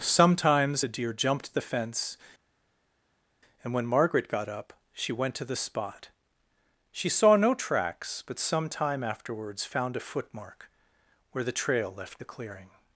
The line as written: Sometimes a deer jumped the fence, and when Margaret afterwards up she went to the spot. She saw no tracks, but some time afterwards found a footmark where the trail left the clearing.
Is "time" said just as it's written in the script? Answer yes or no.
yes